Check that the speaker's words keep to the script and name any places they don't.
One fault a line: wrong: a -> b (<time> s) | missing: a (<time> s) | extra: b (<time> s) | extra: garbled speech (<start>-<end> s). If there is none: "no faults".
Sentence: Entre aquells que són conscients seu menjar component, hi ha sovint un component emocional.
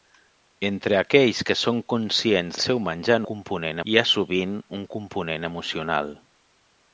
no faults